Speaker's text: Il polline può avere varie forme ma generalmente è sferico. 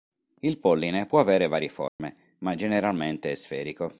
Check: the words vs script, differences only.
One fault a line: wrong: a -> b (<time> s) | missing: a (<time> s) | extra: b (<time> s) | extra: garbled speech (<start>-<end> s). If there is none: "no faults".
no faults